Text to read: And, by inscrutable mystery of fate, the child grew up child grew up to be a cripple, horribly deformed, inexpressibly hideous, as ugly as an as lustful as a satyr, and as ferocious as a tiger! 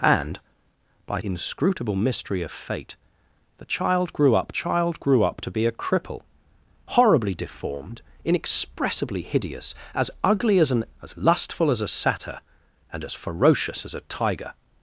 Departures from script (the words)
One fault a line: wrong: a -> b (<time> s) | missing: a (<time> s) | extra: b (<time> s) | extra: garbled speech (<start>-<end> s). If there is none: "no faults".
no faults